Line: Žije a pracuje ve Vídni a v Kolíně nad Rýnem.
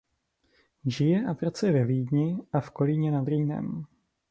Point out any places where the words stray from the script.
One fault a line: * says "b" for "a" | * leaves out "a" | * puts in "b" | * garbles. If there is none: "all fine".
all fine